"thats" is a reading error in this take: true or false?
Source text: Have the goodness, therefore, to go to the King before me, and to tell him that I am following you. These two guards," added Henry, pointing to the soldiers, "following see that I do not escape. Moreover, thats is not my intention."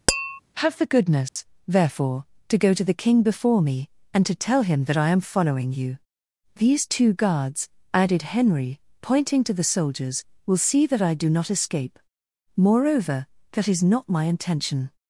true